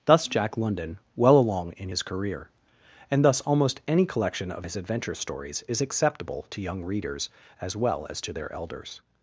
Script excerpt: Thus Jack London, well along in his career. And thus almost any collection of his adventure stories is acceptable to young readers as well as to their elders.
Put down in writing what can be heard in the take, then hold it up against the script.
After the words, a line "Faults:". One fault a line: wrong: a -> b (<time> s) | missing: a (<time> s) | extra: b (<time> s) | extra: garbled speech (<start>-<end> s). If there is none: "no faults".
Thus Jack London, well along in his career. And thus almost any collection of his adventure stories is acceptable to young readers as well as to their elders.
Faults:
no faults